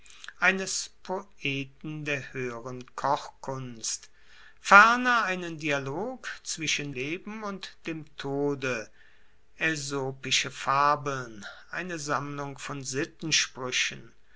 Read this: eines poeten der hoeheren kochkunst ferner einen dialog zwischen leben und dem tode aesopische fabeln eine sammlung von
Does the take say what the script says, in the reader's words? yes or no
yes